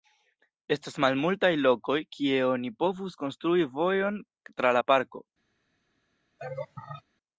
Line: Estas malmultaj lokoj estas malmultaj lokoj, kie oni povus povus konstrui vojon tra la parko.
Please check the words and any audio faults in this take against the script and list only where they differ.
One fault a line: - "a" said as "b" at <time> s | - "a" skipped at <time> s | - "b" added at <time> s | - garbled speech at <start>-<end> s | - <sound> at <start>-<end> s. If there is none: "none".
- "estas malmultaj lokoj" skipped at 2.0 s
- "povus" skipped at 3.2 s
- laugh at 6.4-7.0 s